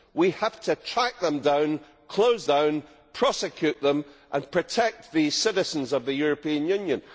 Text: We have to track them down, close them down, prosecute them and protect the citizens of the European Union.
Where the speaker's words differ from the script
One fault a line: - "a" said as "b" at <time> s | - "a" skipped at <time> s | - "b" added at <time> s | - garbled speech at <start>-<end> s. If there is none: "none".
- "them" skipped at 2.5 s